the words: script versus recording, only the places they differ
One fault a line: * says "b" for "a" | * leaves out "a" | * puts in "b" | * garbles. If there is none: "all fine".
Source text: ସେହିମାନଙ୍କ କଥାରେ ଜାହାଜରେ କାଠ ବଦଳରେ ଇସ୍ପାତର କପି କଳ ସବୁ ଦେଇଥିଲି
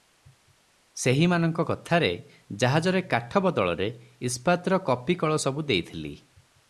all fine